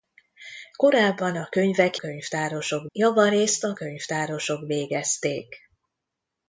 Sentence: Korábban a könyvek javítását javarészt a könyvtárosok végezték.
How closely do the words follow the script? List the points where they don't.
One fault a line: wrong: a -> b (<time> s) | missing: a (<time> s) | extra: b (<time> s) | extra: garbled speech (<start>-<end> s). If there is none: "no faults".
wrong: javítását -> könyvtárosok (1.9 s)